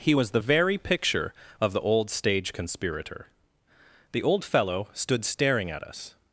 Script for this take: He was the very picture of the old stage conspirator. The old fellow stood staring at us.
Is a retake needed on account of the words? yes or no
no